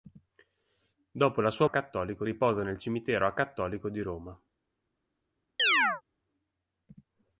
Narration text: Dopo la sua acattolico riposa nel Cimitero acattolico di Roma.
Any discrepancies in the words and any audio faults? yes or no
yes